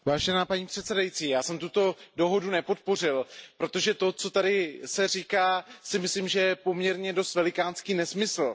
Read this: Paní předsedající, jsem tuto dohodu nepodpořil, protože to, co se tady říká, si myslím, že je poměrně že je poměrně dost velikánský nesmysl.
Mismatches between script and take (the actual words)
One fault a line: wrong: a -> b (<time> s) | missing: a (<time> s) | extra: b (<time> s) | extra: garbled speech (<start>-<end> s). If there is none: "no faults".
extra: já (1.3 s)
missing: že je poměrně (7.1 s)